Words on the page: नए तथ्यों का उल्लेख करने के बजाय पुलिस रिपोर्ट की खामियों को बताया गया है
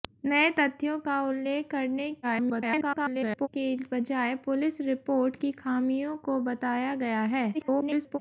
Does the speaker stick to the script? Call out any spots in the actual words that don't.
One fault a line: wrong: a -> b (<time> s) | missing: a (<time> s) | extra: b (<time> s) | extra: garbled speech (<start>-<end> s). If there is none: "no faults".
extra: garbled speech (2.2-3.5 s)
extra: garbled speech (7.5-8.2 s)